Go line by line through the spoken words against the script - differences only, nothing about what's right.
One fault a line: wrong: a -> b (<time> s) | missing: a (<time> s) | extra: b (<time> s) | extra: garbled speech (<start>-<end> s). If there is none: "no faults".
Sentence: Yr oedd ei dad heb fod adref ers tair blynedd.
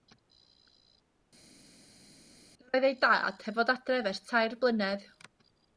no faults